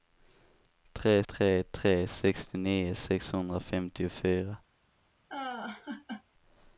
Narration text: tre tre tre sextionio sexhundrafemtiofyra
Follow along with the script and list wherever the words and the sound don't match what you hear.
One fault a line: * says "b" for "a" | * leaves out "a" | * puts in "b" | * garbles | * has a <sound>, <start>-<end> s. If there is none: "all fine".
* has a laugh, 5.3-6.2 s